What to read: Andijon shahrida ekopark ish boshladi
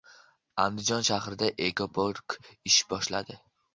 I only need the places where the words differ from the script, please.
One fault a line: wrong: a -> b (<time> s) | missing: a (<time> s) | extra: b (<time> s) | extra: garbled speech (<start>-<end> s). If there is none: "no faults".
no faults